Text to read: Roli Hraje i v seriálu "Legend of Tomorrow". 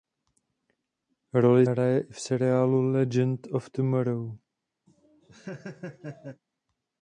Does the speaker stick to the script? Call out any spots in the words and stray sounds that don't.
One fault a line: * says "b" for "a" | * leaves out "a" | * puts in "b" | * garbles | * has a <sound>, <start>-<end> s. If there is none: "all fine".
* has a laugh, 4.9-6.4 s